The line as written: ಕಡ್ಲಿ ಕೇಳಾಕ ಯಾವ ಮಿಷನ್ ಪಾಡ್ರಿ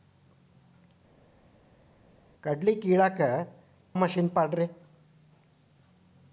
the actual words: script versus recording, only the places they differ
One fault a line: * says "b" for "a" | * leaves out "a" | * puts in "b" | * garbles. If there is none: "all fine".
* leaves out "ಯಾವ"